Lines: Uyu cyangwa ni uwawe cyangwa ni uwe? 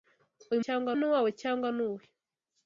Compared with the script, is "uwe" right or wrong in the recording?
right